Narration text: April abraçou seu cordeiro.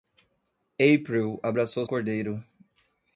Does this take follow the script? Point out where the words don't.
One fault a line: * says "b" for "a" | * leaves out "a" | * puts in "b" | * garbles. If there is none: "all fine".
* leaves out "seu"